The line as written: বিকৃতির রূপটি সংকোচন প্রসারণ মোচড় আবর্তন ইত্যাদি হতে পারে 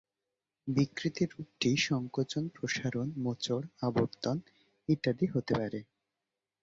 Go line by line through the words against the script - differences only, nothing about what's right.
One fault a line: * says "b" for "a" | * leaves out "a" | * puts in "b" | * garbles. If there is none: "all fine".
all fine